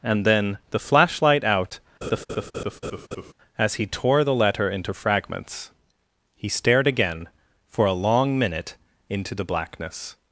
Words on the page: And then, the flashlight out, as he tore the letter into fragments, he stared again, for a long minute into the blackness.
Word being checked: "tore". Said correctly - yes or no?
yes